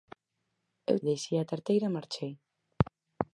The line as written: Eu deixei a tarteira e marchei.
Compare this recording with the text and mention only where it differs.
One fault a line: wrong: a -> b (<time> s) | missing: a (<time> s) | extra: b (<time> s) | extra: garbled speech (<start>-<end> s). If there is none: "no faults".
no faults